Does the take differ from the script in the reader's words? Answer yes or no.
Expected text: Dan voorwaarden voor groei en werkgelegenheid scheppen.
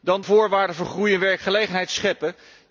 no